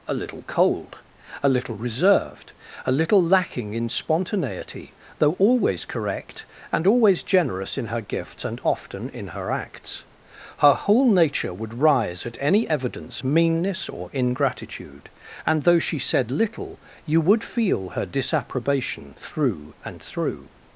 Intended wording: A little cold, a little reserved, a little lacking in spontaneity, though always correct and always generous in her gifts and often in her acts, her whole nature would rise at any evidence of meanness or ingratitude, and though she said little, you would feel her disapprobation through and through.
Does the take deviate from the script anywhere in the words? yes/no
yes